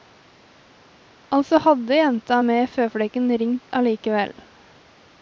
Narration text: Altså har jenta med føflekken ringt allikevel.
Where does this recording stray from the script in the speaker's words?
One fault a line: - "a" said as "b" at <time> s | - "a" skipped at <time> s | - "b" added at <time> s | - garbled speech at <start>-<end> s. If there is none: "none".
- "har" said as "hadde" at 1.6 s